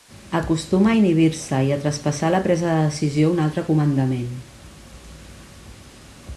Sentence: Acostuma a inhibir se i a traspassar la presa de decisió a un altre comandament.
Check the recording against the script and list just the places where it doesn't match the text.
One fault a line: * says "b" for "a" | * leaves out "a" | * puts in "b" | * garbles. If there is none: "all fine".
all fine